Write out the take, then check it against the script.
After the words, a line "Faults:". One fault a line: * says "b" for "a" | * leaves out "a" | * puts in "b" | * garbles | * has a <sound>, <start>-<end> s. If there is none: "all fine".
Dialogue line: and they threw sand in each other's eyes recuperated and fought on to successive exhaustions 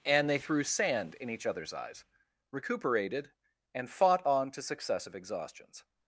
and they threw sand in each other's eyes recuperated and fought on to successive exhaustions
Faults:
all fine